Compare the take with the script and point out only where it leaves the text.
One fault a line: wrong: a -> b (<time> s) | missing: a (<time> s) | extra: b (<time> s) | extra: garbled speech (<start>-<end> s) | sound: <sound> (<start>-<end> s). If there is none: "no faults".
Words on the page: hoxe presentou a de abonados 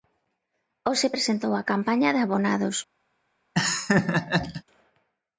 extra: campaña (1.7 s)
sound: laugh (3.5-4.6 s)